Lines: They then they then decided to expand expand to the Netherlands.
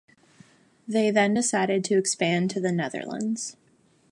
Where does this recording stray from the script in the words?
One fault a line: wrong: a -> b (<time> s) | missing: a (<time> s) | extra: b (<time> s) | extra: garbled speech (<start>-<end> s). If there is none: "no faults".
missing: they then (1.4 s)
missing: expand (2.5 s)